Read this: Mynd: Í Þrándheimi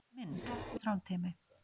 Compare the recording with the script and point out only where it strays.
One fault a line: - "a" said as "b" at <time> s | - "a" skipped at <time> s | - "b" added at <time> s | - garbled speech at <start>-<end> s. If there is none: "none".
none